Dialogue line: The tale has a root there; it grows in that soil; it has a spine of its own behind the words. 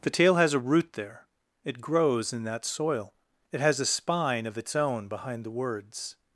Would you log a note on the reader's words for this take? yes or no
no